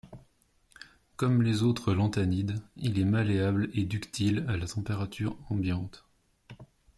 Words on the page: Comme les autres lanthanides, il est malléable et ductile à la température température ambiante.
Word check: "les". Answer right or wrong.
right